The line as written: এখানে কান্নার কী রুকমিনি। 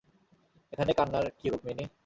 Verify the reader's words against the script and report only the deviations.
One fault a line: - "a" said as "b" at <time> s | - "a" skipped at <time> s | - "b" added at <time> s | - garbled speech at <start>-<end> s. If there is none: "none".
none